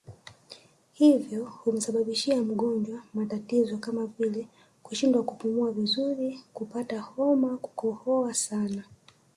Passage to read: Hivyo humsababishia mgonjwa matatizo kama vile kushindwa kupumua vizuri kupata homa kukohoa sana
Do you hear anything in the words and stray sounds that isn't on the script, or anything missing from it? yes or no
no